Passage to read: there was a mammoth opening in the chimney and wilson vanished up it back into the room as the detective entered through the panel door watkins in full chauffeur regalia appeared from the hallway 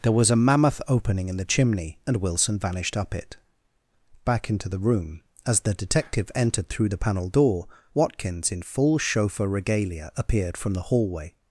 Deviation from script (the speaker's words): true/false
false